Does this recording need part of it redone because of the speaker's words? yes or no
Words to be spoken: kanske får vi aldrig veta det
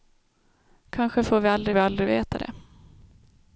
yes